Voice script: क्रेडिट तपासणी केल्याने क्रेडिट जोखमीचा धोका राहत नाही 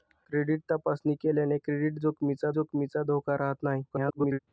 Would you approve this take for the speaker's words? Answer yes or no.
no